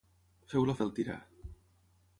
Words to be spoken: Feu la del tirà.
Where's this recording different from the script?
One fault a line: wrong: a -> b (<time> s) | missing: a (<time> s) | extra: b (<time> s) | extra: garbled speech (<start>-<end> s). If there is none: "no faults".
no faults